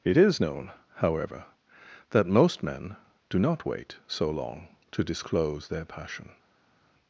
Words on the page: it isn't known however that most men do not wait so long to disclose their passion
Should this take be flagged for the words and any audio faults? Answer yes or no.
yes